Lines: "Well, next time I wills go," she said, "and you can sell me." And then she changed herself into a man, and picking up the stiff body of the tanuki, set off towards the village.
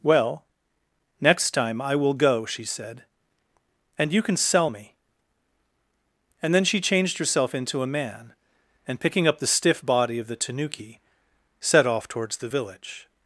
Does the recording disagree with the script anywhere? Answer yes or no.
yes